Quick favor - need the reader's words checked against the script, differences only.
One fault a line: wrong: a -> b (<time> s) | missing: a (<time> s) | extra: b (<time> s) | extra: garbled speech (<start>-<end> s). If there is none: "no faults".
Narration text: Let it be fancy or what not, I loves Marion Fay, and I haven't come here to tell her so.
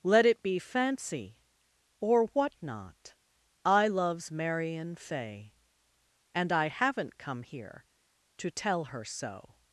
no faults